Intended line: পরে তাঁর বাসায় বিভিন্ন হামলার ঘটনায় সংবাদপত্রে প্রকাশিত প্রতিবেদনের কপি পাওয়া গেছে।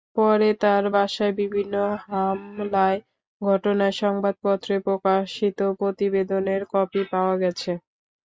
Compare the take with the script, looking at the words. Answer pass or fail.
pass